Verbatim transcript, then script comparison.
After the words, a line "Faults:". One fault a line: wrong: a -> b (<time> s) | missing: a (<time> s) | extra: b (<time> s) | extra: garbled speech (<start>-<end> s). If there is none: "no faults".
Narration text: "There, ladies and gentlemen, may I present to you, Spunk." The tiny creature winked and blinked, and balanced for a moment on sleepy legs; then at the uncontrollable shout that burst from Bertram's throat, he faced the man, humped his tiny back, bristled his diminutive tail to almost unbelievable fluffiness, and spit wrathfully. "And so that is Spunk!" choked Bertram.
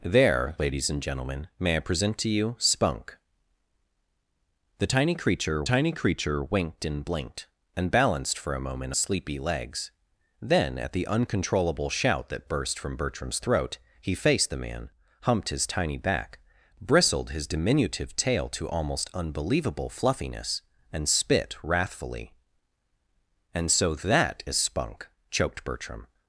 "There, ladies and gentlemen, may I present to you, Spunk." The tiny creature tiny creature winked and blinked, and balanced for a moment sleepy legs; then at the uncontrollable shout that burst from Bertram's throat, he faced the man, humped his tiny back, bristled his diminutive tail to almost unbelievable fluffiness, and spit wrathfully. "And so that is Spunk!" choked Bertram.
Faults:
extra: tiny creature (5.6 s)
missing: on (8.9 s)